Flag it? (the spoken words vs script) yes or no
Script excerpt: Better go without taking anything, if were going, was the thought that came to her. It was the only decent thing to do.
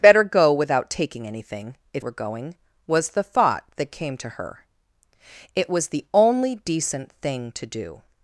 no